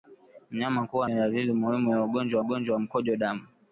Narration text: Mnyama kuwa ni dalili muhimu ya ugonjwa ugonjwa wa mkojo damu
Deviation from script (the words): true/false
false